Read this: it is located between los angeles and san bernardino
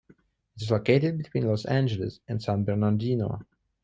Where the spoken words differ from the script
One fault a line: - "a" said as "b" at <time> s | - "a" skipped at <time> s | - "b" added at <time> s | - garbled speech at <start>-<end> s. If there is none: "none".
none